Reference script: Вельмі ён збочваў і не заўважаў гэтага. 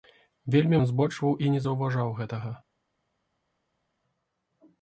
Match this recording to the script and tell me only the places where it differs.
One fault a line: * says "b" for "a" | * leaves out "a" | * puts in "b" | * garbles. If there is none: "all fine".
all fine